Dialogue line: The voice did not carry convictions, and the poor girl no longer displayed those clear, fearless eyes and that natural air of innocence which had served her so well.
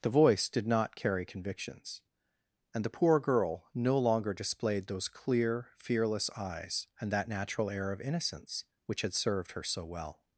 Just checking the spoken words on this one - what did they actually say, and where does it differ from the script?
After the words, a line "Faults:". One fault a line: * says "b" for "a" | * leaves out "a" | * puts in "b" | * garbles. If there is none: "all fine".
The voice did not carry convictions, and the poor girl no longer displayed those clear, fearless eyes and that natural air of innocence which had served her so well.
Faults:
all fine